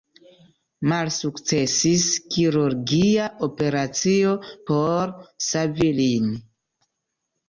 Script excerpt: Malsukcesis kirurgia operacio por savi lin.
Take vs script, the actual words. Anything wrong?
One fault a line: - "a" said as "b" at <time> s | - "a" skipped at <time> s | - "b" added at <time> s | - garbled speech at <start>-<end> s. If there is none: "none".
none